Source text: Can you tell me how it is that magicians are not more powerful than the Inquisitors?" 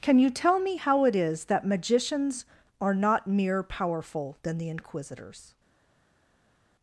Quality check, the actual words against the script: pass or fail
fail